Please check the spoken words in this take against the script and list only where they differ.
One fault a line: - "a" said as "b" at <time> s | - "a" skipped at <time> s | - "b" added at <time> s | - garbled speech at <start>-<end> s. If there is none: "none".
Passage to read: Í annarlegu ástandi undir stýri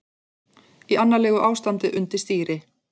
none